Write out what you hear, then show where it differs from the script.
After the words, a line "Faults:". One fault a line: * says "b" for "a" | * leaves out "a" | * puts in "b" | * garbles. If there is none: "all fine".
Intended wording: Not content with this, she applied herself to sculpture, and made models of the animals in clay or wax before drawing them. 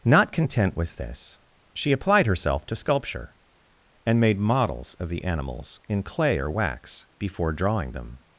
Not content with this, she applied herself to sculpture, and made models of the animals in clay or wax before drawing them.
Faults:
all fine